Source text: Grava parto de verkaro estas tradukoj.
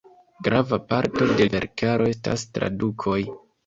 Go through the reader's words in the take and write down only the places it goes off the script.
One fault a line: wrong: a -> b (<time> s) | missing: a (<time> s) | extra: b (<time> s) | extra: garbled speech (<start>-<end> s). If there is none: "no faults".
no faults